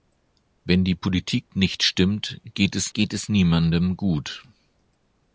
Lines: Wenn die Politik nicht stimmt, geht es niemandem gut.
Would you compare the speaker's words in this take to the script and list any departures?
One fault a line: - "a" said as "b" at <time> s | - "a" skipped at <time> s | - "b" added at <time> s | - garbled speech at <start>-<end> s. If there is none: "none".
- "geht es" added at 2.9 s